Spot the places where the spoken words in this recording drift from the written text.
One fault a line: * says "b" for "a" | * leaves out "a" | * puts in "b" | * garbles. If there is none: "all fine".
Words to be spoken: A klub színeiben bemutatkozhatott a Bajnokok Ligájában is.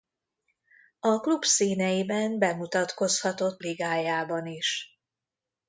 * leaves out "a Bajnokok"